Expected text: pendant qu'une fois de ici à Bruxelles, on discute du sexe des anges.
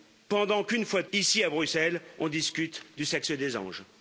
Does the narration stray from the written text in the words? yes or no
no